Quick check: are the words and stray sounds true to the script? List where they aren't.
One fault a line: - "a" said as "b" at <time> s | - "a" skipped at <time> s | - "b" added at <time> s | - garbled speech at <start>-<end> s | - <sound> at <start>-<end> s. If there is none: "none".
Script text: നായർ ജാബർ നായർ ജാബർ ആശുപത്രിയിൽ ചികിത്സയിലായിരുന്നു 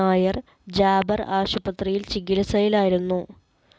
- "നായർ ജാബർ" skipped at 1.2 s